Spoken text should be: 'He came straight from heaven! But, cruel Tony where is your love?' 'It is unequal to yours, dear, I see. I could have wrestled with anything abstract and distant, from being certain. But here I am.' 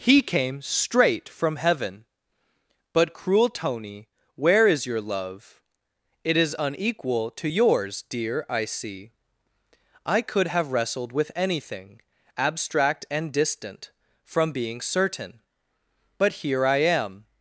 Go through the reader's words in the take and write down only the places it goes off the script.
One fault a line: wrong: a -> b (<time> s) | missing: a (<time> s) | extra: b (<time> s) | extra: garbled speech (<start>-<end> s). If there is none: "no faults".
no faults